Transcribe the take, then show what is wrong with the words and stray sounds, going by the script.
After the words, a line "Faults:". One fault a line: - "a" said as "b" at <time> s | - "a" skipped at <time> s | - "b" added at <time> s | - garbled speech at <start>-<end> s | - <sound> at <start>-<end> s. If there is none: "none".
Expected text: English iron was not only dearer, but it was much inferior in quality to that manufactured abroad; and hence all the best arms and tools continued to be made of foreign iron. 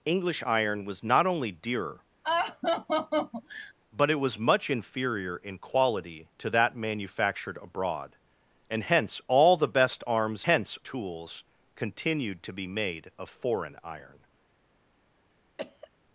English iron was not only dearer, but it was much inferior in quality to that manufactured abroad; and hence all the best arms hence tools continued to be made of foreign iron.
Faults:
- laugh at 2.2-3.7 s
- "and" said as "hence" at 10.4 s
- cough at 15.6-15.9 s